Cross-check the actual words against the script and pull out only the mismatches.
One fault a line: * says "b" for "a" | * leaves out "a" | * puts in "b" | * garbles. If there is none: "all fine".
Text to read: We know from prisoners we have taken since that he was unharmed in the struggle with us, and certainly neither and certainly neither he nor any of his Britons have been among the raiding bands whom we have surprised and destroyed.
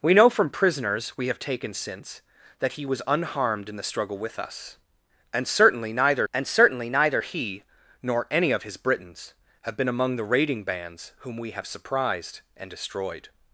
all fine